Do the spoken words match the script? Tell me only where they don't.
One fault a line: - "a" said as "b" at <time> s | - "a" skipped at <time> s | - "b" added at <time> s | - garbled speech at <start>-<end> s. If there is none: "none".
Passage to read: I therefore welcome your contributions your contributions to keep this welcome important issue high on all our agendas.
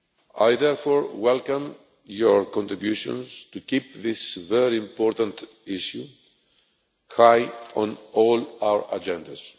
- "your contributions" skipped at 3.5 s
- "welcome" said as "very" at 4.3 s